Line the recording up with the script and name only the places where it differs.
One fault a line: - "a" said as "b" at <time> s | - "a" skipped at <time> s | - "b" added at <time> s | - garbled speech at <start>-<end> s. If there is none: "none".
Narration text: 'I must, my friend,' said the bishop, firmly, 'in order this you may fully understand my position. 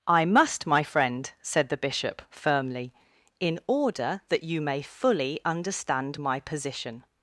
- "this" said as "that" at 4.3 s